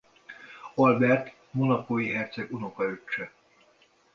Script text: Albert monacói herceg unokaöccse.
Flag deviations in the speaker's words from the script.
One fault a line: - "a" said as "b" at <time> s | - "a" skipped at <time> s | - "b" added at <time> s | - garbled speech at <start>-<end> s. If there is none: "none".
none